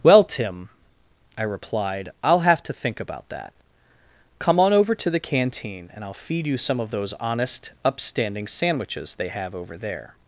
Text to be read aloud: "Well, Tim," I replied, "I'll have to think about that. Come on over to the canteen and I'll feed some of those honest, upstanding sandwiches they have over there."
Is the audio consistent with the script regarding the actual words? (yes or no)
no